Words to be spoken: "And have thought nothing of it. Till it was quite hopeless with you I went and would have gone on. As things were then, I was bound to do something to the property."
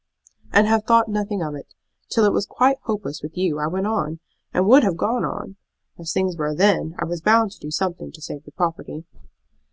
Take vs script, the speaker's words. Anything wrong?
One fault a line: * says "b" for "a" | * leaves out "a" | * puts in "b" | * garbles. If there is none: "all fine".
* puts in "on"
* puts in "save"